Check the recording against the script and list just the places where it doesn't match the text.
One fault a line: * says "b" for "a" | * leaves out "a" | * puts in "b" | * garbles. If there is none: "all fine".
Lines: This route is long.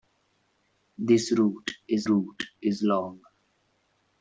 * puts in "route is"